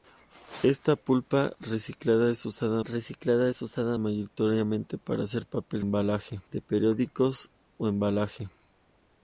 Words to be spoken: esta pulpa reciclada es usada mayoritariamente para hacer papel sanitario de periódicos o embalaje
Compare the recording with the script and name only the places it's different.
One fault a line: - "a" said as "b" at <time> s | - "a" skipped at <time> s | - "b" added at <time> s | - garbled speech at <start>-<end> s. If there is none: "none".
- "reciclada es usada" added at 2.8 s
- "sanitario" said as "embalaje" at 5.8 s